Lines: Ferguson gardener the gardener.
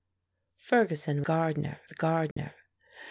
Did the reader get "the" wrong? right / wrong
right